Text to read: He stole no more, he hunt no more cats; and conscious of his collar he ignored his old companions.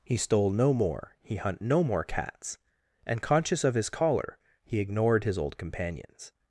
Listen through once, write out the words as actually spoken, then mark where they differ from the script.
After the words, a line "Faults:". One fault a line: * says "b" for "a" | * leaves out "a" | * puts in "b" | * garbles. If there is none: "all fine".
He stole no more, he hunt no more cats; and conscious of his collar he ignored his old companions.
Faults:
all fine